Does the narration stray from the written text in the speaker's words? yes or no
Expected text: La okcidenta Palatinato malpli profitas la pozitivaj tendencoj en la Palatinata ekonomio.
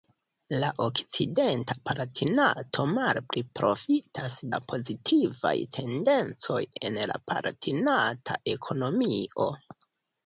no